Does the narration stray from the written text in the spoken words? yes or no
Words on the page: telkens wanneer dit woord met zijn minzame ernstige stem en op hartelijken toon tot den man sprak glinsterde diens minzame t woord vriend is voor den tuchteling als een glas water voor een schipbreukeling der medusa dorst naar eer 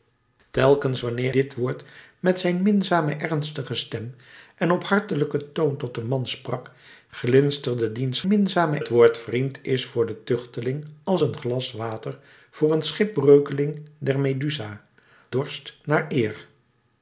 no